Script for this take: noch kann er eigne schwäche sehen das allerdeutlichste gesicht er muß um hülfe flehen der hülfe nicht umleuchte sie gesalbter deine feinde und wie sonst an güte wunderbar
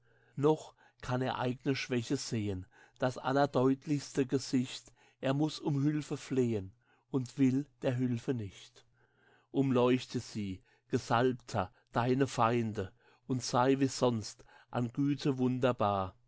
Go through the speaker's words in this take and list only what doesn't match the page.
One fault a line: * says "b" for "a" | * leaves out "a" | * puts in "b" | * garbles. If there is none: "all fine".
* puts in "und will"
* puts in "sei"